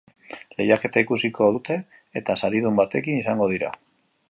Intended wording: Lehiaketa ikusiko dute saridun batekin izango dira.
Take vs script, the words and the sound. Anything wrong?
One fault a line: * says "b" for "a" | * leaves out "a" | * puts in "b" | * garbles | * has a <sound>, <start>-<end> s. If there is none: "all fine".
* puts in "eta"